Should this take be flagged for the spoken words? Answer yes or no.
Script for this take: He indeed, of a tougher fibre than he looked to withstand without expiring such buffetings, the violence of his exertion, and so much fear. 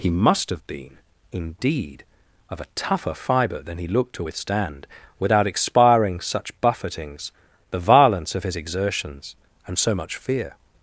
yes